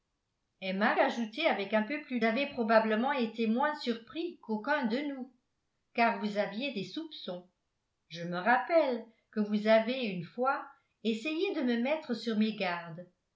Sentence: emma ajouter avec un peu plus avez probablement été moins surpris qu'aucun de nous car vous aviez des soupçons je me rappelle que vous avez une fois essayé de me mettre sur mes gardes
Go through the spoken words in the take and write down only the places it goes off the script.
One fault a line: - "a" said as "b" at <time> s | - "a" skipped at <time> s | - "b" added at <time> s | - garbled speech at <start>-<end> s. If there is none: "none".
none